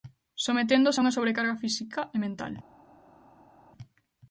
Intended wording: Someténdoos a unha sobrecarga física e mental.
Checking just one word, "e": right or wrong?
right